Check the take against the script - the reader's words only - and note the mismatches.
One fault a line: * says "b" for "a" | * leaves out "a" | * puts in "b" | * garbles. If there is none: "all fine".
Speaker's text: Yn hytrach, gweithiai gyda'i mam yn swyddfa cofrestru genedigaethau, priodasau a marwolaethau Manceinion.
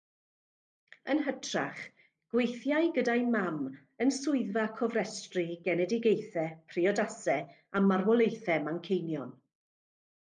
all fine